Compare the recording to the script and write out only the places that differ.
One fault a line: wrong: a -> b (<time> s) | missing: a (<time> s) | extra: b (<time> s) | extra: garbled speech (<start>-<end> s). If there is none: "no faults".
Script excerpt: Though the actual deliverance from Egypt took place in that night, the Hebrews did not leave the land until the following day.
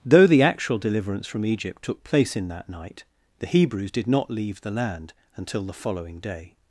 no faults